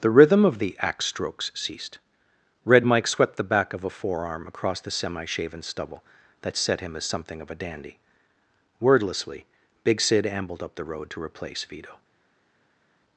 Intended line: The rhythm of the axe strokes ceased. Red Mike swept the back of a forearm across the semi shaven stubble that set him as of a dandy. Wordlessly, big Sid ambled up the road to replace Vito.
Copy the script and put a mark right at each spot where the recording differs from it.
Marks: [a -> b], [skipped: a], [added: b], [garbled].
The rhythm of the axe strokes ceased. Red Mike swept the back of a forearm across the semi shaven stubble that set him as [added: something] of a dandy. Wordlessly, big Sid ambled up the road to replace Vito.